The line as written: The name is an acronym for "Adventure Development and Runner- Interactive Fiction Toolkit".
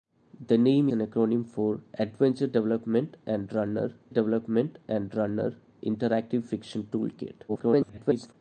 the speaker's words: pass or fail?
fail